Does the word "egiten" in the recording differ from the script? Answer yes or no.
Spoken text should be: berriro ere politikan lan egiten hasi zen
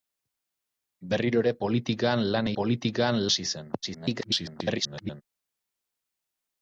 yes